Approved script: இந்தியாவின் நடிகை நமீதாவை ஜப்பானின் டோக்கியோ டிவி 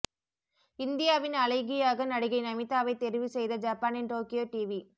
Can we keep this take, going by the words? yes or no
no